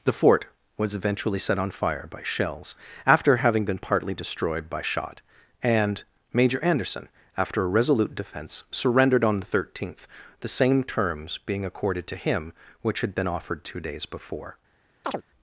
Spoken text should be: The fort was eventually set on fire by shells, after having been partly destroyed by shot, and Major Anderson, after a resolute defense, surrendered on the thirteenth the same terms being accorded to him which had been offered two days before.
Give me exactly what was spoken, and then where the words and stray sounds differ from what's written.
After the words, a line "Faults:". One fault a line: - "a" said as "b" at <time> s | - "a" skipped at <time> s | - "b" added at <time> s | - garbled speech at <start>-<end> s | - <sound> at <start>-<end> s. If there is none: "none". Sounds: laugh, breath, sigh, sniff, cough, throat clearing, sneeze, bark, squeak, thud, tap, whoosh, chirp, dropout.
The fort was eventually set on fire by shells, after having been partly destroyed by shot, and Major Anderson, after a resolute defense, surrendered on the thirteenth the same terms being accorded to him which had been offered two days before.
Faults:
- chirp at 15.0-15.2 s